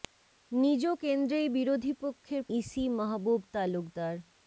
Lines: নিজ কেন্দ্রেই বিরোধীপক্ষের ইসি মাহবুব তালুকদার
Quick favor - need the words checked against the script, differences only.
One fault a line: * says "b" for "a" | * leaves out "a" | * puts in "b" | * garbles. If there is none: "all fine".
all fine